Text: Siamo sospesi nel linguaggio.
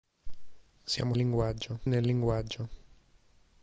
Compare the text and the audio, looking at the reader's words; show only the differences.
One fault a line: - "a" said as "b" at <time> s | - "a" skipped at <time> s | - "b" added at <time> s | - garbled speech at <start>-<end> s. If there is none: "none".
- "sospesi" said as "linguaggio" at 1.1 s